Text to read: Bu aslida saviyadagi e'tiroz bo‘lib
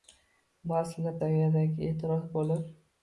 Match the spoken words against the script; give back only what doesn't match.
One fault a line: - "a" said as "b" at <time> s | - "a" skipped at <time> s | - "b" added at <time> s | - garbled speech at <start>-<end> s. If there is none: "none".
none